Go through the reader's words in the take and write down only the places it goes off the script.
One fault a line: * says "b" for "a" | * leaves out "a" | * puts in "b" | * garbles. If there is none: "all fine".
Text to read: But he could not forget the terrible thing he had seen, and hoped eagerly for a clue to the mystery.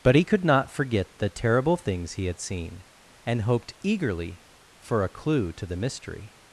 * says "things" for "thing"